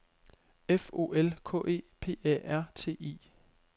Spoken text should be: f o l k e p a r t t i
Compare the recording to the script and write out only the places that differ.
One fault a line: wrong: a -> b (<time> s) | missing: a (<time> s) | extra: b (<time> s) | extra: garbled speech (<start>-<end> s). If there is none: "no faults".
missing: t (3.0 s)